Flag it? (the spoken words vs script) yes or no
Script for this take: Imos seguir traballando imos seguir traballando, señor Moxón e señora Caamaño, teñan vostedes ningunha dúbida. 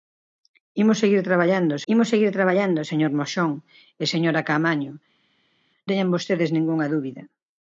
no